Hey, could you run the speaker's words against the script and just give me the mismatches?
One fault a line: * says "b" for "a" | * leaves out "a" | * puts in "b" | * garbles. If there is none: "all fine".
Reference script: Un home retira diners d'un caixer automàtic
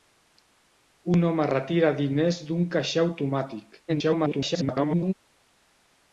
* garbles